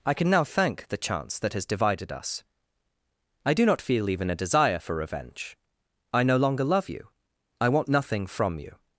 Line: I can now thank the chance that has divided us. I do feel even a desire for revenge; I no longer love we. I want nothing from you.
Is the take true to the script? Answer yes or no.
no